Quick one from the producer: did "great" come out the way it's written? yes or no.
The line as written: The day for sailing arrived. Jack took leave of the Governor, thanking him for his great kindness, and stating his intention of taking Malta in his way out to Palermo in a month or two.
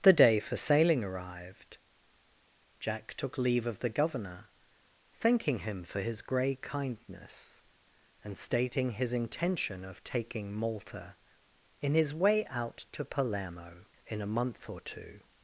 no